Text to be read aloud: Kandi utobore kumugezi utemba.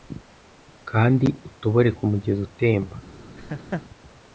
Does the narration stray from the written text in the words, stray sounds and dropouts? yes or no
yes